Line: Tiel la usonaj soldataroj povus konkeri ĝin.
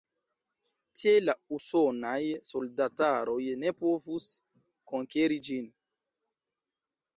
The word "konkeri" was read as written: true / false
true